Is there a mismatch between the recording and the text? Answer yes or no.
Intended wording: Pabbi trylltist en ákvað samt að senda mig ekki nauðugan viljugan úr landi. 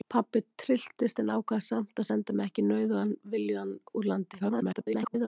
yes